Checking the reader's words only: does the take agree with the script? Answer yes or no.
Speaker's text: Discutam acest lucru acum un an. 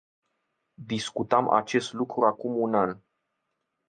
yes